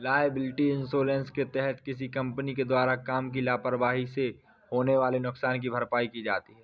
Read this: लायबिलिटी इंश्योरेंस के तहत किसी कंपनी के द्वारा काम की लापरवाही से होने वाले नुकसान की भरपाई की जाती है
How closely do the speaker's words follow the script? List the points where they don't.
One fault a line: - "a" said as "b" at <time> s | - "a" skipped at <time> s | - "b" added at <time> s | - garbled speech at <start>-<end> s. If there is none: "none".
none